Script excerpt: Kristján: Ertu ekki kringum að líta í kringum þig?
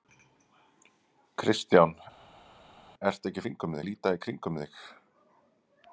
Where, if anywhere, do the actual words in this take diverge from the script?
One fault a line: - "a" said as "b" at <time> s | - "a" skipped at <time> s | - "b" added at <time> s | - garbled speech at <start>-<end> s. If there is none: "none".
none